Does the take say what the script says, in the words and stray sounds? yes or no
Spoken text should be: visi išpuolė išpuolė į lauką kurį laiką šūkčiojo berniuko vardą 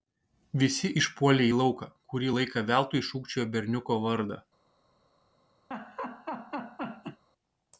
no